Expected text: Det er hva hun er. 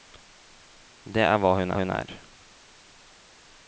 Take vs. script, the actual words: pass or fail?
fail